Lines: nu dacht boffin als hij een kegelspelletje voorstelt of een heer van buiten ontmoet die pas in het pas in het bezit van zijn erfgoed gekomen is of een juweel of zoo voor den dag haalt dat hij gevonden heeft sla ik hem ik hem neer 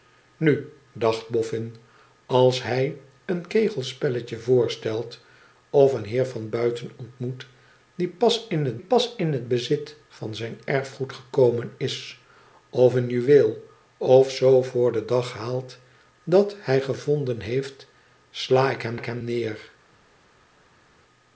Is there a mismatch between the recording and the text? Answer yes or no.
no